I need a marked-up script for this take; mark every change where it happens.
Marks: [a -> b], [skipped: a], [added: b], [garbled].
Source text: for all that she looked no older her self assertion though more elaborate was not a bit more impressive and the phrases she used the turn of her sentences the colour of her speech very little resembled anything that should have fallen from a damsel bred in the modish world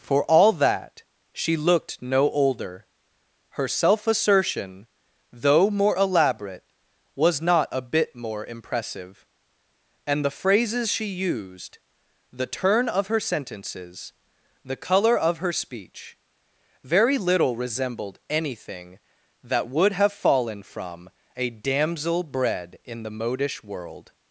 for all that she looked no older her self assertion though more elaborate was not a bit more impressive and the phrases she used the turn of her sentences the colour of her speech very little resembled anything that [should -> would] have fallen from a damsel bred in the modish world